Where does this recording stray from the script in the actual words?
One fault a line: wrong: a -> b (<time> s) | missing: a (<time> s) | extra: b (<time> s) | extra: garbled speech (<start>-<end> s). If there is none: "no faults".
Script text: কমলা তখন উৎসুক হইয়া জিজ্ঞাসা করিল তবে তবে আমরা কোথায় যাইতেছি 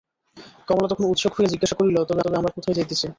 no faults